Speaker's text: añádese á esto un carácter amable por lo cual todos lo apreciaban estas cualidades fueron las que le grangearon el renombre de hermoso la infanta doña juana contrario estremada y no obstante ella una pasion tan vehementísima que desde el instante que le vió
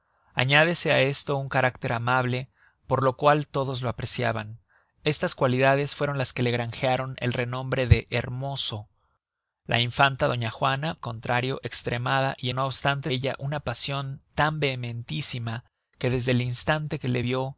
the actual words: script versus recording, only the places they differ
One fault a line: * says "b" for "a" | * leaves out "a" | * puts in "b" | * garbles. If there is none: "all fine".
all fine